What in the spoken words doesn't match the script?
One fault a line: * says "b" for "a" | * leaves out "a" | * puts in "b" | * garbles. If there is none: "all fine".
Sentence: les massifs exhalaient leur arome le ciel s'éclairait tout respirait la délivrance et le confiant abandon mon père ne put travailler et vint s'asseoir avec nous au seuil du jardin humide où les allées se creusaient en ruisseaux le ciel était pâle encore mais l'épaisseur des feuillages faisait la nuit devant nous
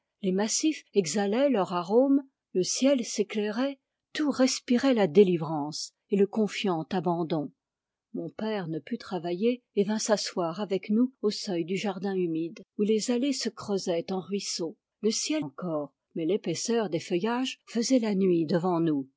* leaves out "était pâle"